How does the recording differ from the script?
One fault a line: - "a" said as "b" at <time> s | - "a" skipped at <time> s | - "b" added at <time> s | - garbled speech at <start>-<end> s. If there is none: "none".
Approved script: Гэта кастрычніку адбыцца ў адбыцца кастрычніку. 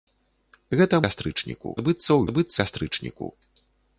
none